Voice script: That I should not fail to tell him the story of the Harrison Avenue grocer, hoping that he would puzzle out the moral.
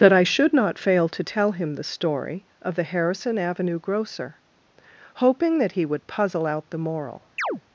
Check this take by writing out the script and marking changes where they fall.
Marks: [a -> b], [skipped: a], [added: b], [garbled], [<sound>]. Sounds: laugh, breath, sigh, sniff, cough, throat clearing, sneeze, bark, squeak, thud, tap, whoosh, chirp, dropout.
That I should not fail to tell him the story of the Harrison Avenue grocer, hoping that he would puzzle out the moral. [chirp]